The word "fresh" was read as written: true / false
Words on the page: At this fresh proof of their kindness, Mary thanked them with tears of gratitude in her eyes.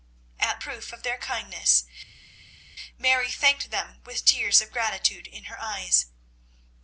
false